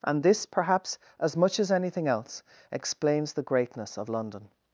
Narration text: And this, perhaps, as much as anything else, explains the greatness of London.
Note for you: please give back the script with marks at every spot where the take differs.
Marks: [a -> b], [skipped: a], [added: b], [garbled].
And this, perhaps, as much as anything else, explains the greatness of London.